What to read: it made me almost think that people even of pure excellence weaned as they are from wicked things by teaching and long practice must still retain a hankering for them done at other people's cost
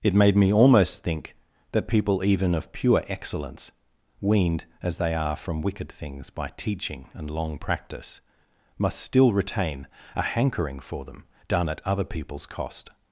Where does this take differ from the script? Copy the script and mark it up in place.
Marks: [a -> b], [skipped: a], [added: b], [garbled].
it made me almost think that people even of pure excellence weaned as they are from wicked things by teaching and long practice must still retain a hankering for them done at other people's cost